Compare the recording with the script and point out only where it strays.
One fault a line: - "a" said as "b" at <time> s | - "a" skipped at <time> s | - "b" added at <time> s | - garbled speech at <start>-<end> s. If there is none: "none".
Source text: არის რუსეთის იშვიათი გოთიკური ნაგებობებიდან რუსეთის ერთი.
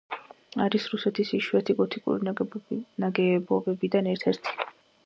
- "რუსეთის" said as "ერთ" at 4.2 s